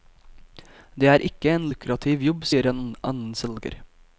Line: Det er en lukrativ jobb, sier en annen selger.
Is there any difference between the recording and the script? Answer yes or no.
yes